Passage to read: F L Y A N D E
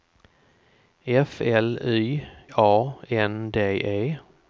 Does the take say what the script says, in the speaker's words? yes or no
yes